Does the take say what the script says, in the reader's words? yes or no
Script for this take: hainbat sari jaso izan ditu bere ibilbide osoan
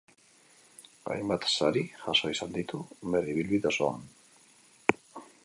yes